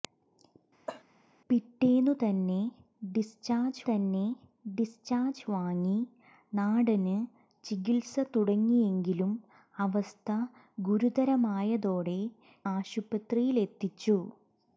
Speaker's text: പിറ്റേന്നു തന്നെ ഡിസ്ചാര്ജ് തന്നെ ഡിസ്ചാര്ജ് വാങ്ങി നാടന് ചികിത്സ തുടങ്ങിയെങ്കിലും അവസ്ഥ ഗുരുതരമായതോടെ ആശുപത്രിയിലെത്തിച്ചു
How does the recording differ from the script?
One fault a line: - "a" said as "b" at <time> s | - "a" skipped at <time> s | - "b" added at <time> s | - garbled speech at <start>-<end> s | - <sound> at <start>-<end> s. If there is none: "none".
- cough at 0.9-1.0 s